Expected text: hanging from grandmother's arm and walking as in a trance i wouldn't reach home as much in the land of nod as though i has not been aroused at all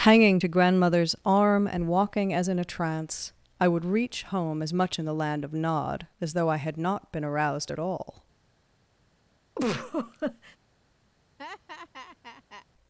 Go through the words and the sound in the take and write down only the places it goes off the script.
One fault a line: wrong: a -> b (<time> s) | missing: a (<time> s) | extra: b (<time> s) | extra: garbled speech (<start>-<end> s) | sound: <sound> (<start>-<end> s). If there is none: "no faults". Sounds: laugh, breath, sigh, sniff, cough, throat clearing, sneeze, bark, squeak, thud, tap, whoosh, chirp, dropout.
wrong: from -> to (0.4 s)
wrong: wouldn't -> would (3.7 s)
wrong: has -> had (6.6 s)
sound: laugh (9.6-10.6 s)
sound: laugh (11.4-12.7 s)